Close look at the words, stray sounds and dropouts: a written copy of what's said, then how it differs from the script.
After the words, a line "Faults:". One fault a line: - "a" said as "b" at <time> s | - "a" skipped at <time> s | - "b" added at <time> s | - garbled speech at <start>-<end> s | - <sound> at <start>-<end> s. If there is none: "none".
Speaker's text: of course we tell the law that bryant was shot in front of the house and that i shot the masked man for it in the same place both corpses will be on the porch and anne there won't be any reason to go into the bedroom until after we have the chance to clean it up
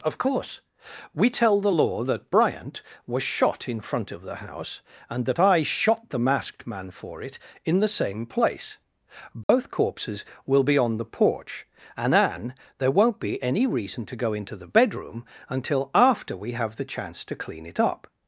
of course we tell the law that bryant was shot in front of the house and that i shot the masked man for it in the same place both corpses will be on the porch and anne there won't be any reason to go into the bedroom until after we have the chance to clean it up
Faults:
- dropout at 9.4-9.5 s